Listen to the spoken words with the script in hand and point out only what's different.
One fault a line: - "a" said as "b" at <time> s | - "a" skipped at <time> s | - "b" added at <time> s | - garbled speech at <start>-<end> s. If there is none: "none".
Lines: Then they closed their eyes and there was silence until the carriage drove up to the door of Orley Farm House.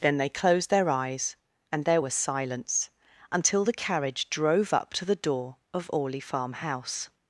none